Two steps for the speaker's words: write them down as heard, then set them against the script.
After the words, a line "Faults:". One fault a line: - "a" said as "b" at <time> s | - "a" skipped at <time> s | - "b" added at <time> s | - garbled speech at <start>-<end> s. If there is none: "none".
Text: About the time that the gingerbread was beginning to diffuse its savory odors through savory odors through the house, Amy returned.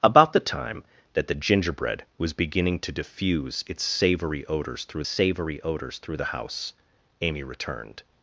About the time that the gingerbread was beginning to diffuse its savory odors through savory odors through the house, Amy returned.
Faults:
none